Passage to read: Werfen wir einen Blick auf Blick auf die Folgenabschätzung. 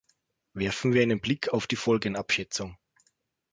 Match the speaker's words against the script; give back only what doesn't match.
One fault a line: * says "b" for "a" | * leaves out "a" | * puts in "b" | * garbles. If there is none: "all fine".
* leaves out "Blick auf"